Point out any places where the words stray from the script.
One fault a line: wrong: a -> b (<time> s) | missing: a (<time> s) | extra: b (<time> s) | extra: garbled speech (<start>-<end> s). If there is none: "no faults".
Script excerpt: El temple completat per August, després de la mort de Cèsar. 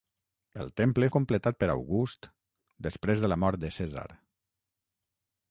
no faults